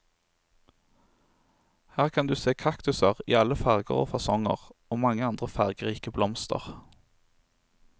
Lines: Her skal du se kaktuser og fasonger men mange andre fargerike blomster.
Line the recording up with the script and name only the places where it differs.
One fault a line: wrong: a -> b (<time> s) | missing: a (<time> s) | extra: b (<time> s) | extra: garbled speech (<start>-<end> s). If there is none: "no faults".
wrong: skal -> kan (2.1 s)
extra: i alle farger (3.3 s)
wrong: men -> og (4.9 s)